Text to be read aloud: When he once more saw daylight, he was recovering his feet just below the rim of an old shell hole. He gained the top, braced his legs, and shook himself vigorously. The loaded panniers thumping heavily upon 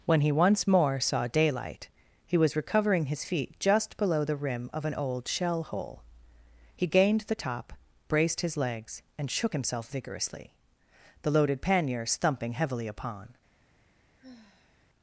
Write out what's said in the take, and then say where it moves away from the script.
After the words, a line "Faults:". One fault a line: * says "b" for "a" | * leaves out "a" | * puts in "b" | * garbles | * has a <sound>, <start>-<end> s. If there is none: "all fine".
When he once more saw daylight, he was recovering his feet just below the rim of an old shell hole. He gained the top, braced his legs, and shook himself vigorously. The loaded panniers thumping heavily upon
Faults:
* has a sigh, 14.2-14.9 s